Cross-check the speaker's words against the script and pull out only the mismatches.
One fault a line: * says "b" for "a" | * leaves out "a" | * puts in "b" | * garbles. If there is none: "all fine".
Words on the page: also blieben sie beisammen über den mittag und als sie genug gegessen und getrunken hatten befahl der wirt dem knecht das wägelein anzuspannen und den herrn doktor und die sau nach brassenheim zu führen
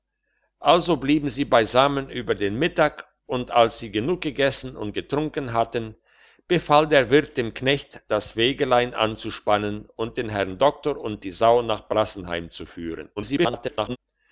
* garbles